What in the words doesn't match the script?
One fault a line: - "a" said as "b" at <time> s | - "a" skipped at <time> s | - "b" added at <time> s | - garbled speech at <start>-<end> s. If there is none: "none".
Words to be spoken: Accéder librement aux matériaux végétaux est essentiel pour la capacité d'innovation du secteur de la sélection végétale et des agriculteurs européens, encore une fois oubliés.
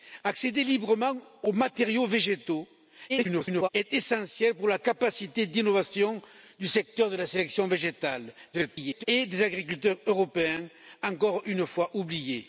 - garbled speech at 3.1-3.7 s
- garbled speech at 8.5-9.0 s